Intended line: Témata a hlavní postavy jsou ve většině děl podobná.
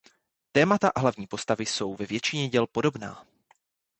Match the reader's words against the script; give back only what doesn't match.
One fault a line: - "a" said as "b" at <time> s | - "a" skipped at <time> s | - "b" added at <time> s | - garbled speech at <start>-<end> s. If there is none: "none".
none